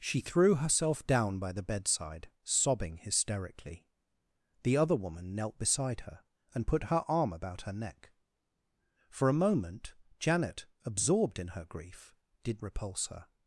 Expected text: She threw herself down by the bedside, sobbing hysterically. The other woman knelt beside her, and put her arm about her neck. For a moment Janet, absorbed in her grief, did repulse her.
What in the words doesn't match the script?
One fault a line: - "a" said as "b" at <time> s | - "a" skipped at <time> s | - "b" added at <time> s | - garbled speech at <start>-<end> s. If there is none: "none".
none